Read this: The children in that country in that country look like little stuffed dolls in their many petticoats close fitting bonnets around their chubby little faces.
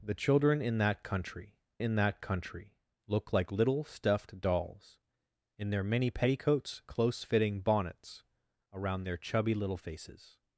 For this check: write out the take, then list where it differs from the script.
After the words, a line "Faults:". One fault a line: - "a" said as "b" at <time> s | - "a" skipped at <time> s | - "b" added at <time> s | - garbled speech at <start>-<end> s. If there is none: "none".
The children in that country in that country look like little stuffed dolls in their many petticoats close fitting bonnets around their chubby little faces.
Faults:
none